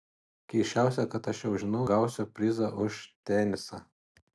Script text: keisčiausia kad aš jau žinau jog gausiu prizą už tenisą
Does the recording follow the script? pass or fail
fail